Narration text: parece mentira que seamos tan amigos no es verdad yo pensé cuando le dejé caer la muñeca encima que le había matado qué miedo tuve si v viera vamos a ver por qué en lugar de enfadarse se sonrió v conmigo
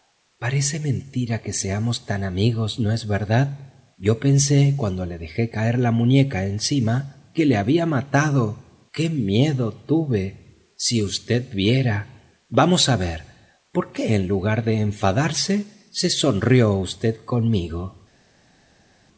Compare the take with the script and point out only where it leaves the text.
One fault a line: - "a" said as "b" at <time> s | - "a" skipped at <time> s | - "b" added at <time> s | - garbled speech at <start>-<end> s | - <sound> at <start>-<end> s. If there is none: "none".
none